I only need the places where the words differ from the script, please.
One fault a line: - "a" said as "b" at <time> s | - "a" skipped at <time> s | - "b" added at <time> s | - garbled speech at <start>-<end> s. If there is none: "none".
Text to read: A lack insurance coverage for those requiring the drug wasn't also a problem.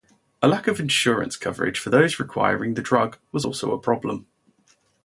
- "of" added at 0.7 s
- "wasn't" said as "was" at 3.3 s